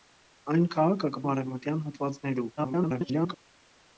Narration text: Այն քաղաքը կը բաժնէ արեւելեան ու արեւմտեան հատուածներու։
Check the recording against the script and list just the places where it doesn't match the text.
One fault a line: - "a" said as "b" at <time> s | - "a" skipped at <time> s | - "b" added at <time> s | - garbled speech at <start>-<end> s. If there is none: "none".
- "բաժնէ արեւելեան" skipped at 1.2 s
- garbled speech at 2.6-3.4 s